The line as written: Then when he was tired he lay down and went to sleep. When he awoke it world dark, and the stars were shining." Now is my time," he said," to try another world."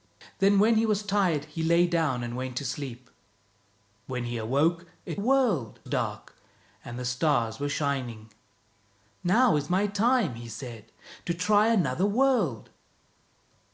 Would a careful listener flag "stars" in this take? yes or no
no